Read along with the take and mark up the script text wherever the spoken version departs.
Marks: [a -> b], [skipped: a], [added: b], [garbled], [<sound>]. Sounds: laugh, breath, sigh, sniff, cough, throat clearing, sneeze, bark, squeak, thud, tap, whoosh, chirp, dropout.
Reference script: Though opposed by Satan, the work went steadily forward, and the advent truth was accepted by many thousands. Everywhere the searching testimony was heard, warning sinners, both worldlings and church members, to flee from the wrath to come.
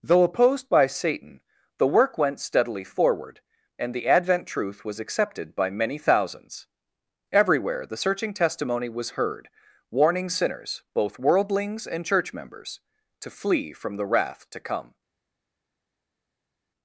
Though opposed by Satan, the work went steadily forward, and the advent truth was accepted by many thousands. Everywhere the searching testimony was heard, warning sinners, both worldlings and church members, to flee from the wrath to come.